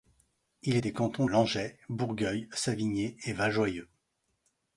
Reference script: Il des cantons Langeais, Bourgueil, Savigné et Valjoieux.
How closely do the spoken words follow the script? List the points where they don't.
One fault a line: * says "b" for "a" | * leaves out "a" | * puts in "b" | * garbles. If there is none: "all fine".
all fine